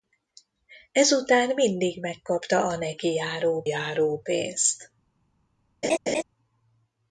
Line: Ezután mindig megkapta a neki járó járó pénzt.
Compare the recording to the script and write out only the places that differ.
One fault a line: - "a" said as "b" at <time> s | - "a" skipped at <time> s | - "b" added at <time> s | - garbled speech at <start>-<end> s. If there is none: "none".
none